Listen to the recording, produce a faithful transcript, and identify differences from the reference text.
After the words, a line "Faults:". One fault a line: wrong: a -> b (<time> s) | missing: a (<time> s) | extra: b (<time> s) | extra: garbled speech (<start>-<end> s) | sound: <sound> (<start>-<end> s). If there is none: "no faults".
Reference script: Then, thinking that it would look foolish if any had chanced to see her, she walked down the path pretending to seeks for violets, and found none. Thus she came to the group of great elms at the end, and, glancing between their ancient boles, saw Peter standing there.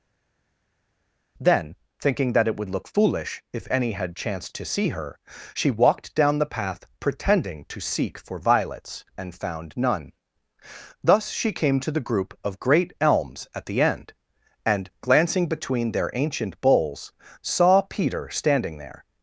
Then, thinking that it would look foolish if any had chanced to see her, she walked down the path pretending to seek for violets, and found none. Thus she came to the group of great elms at the end, and, glancing between their ancient boles, saw Peter standing there.
Faults:
wrong: seeks -> seek (7.8 s)